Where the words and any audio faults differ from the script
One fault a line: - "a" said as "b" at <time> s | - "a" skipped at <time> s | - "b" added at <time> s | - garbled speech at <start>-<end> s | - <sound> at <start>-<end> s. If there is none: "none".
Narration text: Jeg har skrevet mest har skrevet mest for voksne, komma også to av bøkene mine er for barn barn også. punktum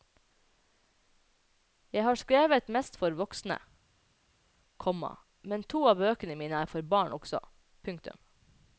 - "har skrevet mest" skipped at 3.0 s
- "også" said as "men" at 5.4 s
- "barn" skipped at 7.1 s